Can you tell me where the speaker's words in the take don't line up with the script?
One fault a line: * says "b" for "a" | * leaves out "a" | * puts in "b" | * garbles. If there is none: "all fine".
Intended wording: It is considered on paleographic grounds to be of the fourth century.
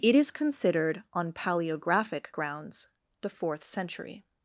* leaves out "to be of"